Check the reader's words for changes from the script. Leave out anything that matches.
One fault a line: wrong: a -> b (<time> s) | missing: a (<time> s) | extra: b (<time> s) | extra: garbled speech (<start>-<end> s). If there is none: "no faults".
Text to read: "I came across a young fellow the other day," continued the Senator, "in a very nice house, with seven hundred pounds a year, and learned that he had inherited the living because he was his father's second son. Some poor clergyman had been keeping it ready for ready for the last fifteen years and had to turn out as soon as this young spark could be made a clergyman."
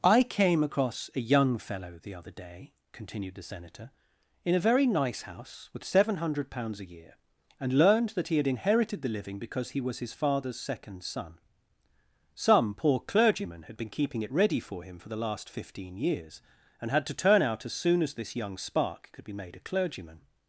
wrong: ready -> him (14.8 s)